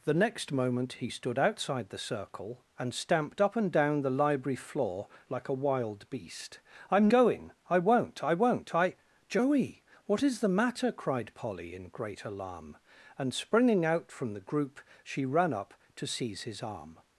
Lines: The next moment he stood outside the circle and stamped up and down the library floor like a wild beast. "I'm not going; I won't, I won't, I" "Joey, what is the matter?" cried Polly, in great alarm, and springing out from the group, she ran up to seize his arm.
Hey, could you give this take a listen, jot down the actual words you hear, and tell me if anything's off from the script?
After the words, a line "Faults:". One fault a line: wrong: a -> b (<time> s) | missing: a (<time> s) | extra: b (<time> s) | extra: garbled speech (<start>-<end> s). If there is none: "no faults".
The next moment he stood outside the circle and stamped up and down the library floor like a wild beast. "I'm going; I won't, I won't, I" "Joey, what is the matter?" cried Polly, in great alarm, and springing out from the group, she ran up to seize his arm.
Faults:
missing: not (7.1 s)